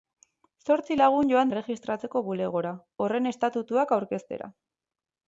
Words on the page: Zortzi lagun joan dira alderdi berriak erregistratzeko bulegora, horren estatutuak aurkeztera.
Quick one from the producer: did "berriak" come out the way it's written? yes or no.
no